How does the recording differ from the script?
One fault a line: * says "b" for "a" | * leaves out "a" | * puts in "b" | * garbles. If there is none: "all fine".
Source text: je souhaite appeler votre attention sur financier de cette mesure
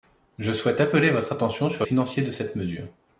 all fine